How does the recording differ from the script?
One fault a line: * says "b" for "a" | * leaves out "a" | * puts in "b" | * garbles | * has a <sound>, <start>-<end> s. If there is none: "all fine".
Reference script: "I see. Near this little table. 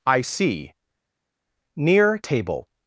* leaves out "this little"